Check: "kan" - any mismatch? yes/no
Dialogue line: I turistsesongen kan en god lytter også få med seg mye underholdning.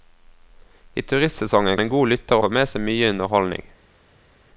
yes